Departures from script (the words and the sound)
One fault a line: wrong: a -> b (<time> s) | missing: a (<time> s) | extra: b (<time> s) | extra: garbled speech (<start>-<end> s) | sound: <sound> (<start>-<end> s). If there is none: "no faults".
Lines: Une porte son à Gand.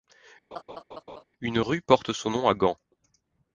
sound: laugh (0.5-1.2 s)
extra: rue (1.6 s)
extra: nom (2.3 s)